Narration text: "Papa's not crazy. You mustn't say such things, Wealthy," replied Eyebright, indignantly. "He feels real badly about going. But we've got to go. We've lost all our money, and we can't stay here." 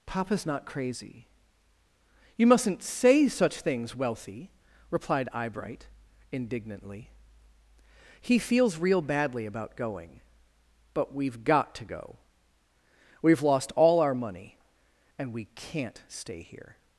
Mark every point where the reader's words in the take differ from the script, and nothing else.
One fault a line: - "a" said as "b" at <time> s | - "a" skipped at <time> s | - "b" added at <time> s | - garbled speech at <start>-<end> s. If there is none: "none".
none